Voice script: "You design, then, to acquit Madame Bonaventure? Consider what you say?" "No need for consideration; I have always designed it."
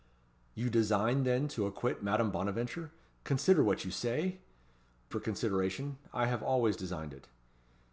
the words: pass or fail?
fail